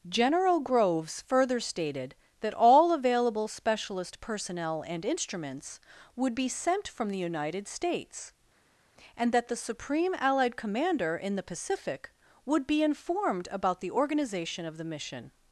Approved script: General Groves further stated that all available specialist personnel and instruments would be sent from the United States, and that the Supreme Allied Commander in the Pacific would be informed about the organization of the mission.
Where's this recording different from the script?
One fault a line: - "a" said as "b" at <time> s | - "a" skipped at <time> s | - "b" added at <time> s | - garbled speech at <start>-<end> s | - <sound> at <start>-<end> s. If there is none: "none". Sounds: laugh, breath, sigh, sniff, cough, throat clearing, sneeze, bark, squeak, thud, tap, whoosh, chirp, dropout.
none